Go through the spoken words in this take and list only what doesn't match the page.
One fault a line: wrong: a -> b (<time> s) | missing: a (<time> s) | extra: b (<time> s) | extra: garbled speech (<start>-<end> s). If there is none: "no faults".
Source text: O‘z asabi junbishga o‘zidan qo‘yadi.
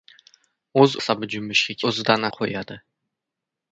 no faults